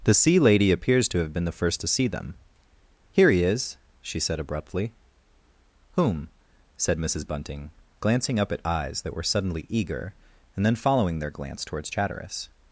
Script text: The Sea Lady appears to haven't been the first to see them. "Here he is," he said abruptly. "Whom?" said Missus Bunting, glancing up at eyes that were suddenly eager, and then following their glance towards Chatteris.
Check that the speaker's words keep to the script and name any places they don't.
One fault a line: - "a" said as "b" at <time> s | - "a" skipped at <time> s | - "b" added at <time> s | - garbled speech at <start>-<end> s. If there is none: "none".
- "haven't" said as "have" at 1.2 s
- "he" said as "she" at 4.0 s